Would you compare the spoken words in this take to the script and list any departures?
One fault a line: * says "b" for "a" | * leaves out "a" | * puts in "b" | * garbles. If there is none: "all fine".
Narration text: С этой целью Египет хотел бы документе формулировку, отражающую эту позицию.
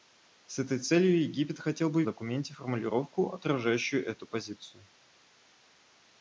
all fine